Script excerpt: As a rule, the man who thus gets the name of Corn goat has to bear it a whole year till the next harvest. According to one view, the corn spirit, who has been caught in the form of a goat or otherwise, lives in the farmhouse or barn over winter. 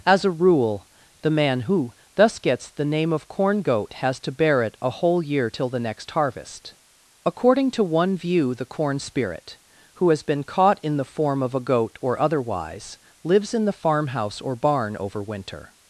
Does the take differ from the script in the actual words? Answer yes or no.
no